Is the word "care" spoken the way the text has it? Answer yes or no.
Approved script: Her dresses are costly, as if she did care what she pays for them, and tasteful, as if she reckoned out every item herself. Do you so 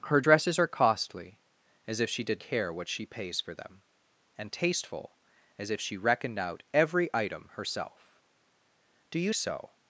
yes